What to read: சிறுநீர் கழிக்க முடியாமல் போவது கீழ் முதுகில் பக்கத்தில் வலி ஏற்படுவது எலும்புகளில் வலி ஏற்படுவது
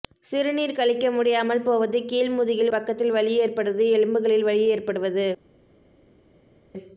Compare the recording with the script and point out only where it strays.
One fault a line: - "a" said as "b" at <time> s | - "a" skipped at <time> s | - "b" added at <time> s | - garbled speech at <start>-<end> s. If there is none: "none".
none